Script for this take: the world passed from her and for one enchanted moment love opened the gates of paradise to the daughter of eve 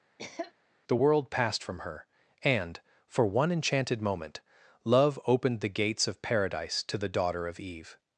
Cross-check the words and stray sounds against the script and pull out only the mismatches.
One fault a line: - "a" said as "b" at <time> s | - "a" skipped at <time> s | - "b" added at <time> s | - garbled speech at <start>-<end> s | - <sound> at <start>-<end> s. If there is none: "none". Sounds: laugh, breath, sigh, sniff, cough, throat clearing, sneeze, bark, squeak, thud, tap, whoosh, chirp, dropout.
- cough at 0.2-0.5 s